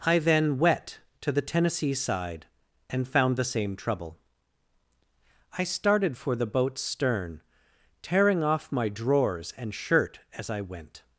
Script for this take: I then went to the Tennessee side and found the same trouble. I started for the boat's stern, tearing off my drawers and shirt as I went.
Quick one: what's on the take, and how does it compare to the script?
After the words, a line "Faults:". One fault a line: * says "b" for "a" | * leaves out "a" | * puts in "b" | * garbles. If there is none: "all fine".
I then wet to the Tennessee side and found the same trouble. I started for the boat's stern, tearing off my drawers and shirt as I went.
Faults:
* says "wet" for "went"